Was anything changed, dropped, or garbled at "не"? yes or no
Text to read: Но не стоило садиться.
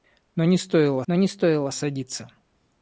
no